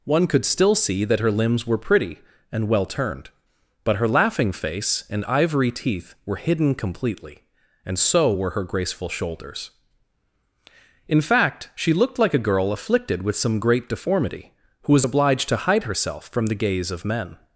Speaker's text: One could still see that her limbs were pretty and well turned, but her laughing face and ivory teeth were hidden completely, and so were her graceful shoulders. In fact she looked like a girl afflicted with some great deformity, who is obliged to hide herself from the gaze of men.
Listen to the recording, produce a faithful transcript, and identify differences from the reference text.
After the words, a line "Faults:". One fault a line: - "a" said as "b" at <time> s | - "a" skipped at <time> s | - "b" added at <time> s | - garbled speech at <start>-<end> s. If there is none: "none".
One could still see that her limbs were pretty and well turned, but her laughing face and ivory teeth were hidden completely, and so were her graceful shoulders. In fact she looked like a girl afflicted with some great deformity, who was obliged to hide herself from the gaze of men.
Faults:
- "is" said as "was" at 14.9 s